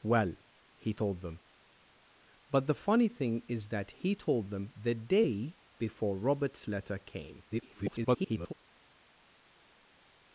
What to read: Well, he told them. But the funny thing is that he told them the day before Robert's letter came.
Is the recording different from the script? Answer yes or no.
yes